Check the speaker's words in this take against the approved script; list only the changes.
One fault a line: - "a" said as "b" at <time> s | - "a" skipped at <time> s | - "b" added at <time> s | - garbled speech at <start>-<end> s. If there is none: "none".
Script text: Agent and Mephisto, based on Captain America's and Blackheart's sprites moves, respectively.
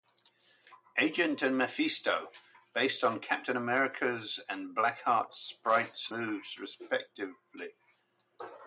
none